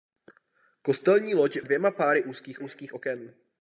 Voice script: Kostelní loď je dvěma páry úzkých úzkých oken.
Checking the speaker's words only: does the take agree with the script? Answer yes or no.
yes